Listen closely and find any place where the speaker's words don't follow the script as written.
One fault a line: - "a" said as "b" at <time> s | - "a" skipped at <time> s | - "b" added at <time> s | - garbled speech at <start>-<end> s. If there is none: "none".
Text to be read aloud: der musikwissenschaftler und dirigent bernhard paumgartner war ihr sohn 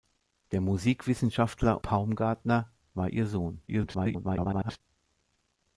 - "und dirigent bernhard" skipped at 1.8 s
- garbled speech at 3.7-4.8 s